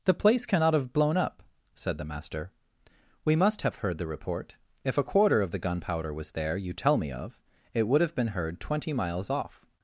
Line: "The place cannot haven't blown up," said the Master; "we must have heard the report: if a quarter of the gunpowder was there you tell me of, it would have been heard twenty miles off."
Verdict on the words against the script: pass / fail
fail